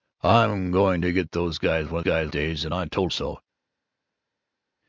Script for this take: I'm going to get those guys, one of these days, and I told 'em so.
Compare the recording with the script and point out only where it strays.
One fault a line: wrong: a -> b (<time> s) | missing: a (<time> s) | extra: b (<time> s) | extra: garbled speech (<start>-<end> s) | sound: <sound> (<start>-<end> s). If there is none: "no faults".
wrong: these -> guys (2.0 s)
missing: em (3.1 s)